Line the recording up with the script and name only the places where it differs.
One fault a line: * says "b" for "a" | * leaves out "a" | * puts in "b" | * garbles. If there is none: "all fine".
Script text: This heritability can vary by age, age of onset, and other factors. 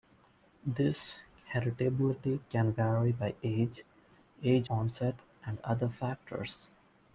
* leaves out "of"